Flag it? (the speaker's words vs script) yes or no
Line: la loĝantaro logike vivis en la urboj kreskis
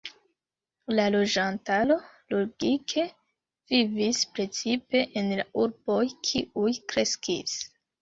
yes